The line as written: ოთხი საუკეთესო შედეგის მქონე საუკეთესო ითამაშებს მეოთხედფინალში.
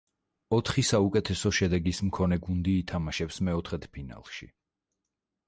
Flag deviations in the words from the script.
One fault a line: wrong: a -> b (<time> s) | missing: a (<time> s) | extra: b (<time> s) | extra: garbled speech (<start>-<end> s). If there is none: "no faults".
wrong: საუკეთესო -> გუნდი (2.5 s)